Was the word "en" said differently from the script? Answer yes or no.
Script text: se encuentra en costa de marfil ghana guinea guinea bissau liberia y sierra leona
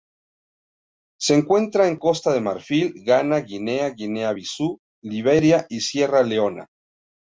no